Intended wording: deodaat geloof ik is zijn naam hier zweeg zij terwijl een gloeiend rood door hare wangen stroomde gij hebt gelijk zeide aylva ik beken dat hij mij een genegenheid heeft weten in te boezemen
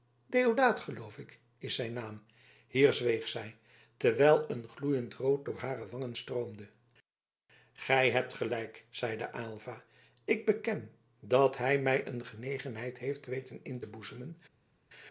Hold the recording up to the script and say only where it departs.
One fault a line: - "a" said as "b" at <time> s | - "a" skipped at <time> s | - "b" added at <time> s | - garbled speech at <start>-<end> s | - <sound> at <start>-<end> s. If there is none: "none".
none